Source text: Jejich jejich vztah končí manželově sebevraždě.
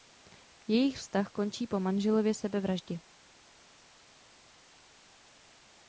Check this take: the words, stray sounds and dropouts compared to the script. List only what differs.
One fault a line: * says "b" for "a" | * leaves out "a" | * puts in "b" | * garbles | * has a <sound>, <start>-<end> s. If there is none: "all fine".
* leaves out "jejich"
* puts in "po"